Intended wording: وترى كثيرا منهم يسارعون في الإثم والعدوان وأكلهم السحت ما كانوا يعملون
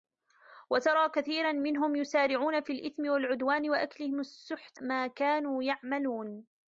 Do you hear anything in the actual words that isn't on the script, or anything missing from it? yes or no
no